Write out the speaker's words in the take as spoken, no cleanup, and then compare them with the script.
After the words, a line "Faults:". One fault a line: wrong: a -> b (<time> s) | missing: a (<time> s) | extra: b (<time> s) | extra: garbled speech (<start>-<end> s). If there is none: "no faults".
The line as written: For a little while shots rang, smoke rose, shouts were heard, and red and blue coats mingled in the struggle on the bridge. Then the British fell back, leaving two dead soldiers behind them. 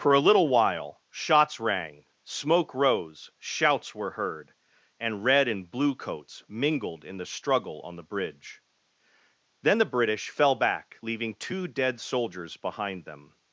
For a little while shots rang, smoke rose, shouts were heard, and red and blue coats mingled in the struggle on the bridge. Then the British fell back, leaving two dead soldiers behind them.
Faults:
no faults